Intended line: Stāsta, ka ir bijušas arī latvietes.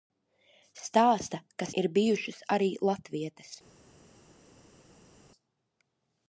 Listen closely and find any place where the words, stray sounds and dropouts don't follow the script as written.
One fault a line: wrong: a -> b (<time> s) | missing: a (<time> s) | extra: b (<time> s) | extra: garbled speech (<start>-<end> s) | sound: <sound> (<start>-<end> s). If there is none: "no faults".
no faults